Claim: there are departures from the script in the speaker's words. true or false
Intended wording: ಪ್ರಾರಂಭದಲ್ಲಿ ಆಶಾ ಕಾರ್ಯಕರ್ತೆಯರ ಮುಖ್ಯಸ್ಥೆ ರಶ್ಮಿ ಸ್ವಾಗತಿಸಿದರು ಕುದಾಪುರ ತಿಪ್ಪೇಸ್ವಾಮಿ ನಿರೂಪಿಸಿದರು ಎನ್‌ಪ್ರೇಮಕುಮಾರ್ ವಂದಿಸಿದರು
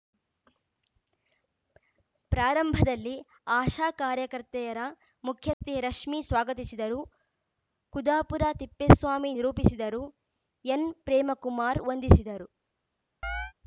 false